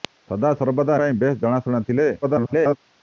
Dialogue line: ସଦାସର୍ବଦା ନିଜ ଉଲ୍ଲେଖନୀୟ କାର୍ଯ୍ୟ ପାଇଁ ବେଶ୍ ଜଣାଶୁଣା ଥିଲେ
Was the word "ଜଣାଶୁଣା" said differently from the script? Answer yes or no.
no